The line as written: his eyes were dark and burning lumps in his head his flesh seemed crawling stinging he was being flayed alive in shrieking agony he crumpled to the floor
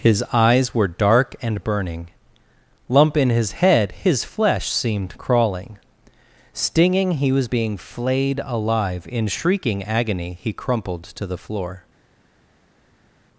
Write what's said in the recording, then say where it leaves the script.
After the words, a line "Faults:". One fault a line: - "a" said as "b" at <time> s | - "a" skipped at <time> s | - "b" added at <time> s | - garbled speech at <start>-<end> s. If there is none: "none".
his eyes were dark and burning lump in his head his flesh seemed crawling stinging he was being flayed alive in shrieking agony he crumpled to the floor
Faults:
- "lumps" said as "lump" at 2.9 s